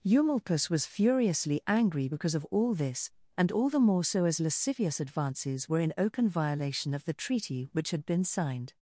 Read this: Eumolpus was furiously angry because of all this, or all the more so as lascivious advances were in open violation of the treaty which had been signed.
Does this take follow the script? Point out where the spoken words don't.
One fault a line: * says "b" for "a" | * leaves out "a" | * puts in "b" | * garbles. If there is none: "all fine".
* says "and" for "or"